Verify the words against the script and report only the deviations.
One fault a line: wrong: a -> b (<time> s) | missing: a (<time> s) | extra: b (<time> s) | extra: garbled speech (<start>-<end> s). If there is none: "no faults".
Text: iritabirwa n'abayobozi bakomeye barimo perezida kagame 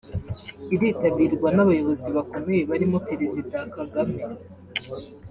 no faults